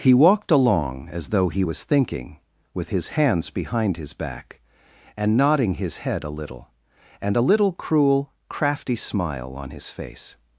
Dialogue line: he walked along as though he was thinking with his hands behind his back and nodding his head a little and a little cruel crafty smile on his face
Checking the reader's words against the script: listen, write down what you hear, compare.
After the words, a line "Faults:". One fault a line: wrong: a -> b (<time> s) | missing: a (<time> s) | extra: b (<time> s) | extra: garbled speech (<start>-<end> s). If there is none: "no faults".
he walked along as though he was thinking with his hands behind his back and nodding his head a little and a little cruel crafty smile on his face
Faults:
no faults